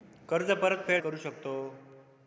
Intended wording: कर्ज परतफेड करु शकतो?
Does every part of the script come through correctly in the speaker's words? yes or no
yes